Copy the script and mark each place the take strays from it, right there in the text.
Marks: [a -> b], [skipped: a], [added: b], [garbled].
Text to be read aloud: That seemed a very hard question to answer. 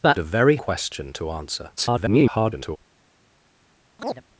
That [skipped: seemed] a very [skipped: hard] question to answer. [garbled]